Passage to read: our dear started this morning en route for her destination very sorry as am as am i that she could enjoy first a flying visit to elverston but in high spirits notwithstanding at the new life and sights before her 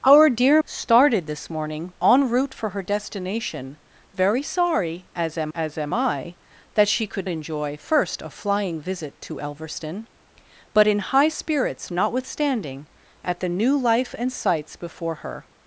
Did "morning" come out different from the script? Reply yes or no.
no